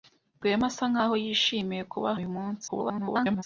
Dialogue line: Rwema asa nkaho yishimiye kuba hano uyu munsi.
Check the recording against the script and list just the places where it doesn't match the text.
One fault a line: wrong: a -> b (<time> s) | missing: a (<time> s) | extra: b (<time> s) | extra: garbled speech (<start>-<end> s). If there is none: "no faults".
missing: hano (2.1 s)
extra: garbled speech (2.7-3.4 s)